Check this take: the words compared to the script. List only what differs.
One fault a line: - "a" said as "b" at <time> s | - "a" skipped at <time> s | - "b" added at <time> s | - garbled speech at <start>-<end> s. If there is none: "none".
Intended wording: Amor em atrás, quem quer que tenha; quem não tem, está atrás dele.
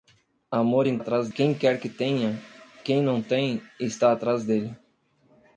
none